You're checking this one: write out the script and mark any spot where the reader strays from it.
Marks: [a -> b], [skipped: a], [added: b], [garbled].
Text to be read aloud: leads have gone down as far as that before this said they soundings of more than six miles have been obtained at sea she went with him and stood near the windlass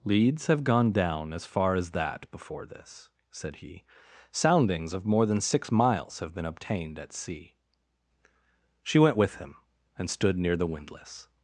leads have gone down as far as that before this said [they -> he] soundings of more than six miles have been obtained at sea she went with him and stood near the windlass